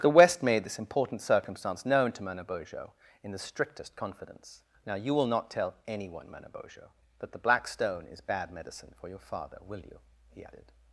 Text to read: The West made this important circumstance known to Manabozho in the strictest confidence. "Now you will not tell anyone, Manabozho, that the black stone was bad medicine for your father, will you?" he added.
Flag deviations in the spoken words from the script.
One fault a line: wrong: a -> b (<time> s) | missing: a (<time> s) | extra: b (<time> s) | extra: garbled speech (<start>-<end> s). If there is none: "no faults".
wrong: was -> is (8.1 s)